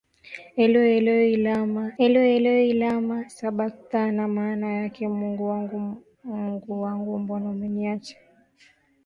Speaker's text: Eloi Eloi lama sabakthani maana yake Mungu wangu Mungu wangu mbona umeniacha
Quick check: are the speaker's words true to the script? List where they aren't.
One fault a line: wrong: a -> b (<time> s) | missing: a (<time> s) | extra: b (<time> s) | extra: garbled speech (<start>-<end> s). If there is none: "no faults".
extra: eloi Eloi lama (2.0 s)